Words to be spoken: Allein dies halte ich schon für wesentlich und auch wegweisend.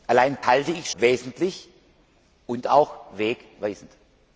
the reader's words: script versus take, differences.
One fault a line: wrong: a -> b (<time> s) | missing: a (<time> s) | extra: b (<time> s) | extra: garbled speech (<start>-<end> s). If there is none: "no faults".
missing: dies (0.4 s)
missing: schon für (0.9 s)